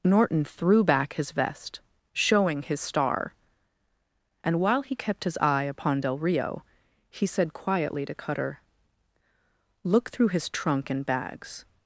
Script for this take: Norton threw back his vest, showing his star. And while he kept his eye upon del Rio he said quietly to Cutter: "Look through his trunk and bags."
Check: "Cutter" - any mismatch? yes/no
no